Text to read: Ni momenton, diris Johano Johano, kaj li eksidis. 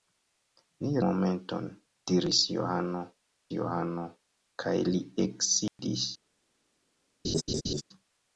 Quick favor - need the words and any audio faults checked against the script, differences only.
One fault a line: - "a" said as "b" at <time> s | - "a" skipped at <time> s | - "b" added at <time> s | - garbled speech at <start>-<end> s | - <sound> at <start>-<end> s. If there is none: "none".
- dropout at 5.7-5.8 s
- laugh at 7.2-7.8 s